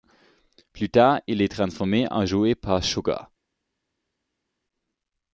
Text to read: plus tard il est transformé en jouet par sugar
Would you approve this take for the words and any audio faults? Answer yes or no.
yes